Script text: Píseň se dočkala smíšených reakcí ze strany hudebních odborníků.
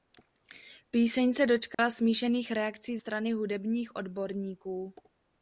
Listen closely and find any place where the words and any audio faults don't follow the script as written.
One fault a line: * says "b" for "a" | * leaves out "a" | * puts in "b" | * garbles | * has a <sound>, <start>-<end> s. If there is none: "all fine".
* has a dropout, 1.7-1.8 s
* leaves out "ze"